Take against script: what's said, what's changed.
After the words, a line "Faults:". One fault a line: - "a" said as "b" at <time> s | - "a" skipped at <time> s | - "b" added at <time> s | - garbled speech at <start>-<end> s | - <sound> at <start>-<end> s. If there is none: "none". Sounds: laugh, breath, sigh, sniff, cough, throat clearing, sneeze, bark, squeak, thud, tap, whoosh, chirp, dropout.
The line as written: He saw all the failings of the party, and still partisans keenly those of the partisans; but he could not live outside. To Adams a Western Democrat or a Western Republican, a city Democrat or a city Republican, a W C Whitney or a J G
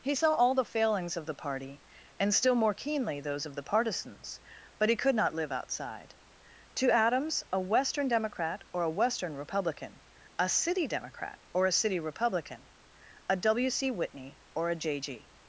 He saw all the failings of the party, and still more keenly those of the partisans; but he could not live outside. To Adams a Western Democrat or a Western Republican, a city Democrat or a city Republican, a W C Whitney or a J G
Faults:
- "partisans" said as "more" at 2.5 s